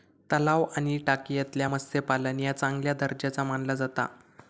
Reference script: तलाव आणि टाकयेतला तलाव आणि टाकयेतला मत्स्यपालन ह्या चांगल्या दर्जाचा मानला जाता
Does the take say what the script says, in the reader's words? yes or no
no